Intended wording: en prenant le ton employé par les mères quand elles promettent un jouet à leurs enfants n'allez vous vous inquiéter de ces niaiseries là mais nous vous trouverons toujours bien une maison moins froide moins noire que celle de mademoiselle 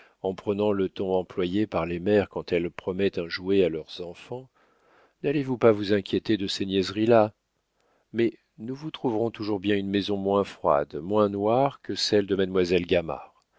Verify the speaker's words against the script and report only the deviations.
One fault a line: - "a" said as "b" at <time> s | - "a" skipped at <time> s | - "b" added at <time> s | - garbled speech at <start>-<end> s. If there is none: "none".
- "pas" added at 5.6 s